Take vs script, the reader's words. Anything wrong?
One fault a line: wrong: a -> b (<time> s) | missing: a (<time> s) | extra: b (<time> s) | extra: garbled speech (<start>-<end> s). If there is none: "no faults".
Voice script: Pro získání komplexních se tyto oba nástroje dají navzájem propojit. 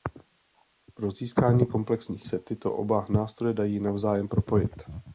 no faults